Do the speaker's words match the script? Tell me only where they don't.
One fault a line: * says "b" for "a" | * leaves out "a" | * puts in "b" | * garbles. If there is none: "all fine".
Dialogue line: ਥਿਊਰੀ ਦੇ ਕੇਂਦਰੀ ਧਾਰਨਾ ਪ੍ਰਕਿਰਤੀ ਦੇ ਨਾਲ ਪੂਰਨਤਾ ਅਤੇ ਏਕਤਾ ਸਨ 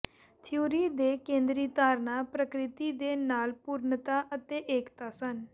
all fine